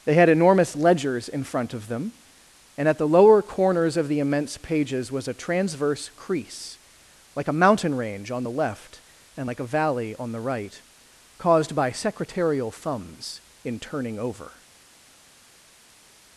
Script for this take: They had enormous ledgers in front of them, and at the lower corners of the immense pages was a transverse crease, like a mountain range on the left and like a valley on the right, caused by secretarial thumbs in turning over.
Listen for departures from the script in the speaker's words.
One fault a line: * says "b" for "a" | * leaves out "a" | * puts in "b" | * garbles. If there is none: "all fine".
all fine